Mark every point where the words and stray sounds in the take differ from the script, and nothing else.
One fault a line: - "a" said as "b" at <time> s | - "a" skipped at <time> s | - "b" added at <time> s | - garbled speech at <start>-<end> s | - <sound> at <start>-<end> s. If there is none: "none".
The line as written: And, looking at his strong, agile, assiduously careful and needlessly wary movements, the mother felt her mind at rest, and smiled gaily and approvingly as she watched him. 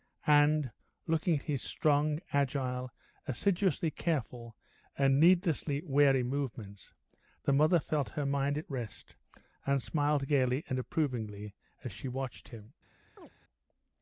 - chirp at 13.2-13.3 s